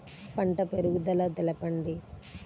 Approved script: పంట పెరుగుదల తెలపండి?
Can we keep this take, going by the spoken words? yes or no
yes